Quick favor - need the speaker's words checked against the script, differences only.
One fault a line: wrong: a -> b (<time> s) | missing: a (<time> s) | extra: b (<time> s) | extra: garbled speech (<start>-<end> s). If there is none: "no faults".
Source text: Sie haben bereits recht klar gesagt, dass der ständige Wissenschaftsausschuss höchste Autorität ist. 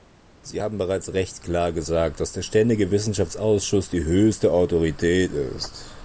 extra: die (3.9 s)